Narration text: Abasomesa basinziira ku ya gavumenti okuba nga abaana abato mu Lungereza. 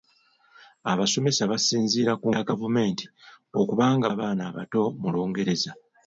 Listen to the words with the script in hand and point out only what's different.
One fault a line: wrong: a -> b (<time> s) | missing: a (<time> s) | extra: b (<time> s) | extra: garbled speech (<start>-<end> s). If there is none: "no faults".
no faults